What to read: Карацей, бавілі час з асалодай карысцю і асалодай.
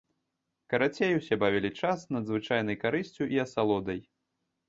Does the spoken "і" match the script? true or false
true